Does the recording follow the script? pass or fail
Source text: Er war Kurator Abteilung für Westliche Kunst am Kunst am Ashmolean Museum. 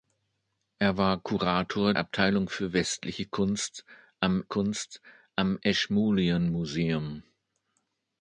pass